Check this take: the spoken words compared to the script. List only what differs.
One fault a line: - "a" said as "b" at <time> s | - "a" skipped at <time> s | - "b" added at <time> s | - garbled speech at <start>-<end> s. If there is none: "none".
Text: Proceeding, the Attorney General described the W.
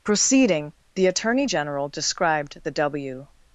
none